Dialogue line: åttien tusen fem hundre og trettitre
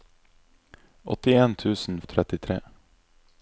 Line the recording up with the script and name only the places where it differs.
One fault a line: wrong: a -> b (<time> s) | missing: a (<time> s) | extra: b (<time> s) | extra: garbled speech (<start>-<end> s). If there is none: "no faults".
missing: fem hundre (2.0 s)